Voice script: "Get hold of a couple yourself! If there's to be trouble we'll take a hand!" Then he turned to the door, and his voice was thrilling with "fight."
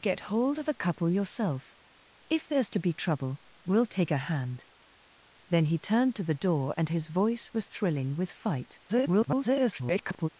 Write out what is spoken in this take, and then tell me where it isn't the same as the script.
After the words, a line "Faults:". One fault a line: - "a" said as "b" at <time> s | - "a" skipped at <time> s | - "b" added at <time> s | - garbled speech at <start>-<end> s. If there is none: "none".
"Get hold of a couple yourself! If there's to be trouble we'll take a hand!" Then he turned to the door, and his voice was thrilling with "fight." [garbled]
Faults:
- garbled speech at 8.9-10.3 s